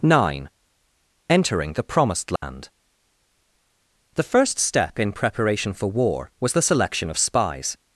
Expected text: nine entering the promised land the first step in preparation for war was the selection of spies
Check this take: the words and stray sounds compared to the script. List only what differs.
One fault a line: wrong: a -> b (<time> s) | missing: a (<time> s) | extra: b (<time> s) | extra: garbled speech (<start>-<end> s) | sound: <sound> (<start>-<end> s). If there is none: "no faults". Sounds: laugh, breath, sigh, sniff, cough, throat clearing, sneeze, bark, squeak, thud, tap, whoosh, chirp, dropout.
sound: dropout (2.4-2.4 s)